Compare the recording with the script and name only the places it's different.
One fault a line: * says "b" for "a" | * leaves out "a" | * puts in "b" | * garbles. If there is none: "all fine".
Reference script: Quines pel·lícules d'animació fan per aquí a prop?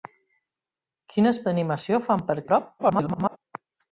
* leaves out "pel·lícules"
* leaves out "aquí"
* garbles